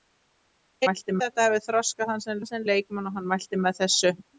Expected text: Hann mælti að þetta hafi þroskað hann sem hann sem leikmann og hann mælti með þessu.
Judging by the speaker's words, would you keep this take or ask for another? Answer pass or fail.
pass